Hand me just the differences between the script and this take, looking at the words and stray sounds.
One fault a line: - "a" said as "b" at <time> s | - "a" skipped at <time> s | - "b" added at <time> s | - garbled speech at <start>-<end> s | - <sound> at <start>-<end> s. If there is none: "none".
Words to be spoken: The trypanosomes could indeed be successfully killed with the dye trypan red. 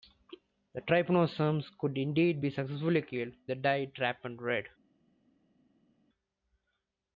- "with" skipped at 3.3 s